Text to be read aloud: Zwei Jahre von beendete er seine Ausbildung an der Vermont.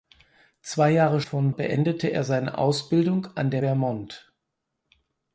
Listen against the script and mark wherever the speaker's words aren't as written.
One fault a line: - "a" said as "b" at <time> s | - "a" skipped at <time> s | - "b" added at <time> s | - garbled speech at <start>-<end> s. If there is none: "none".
none